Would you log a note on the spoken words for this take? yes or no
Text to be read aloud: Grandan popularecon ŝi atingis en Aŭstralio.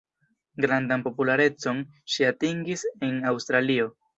no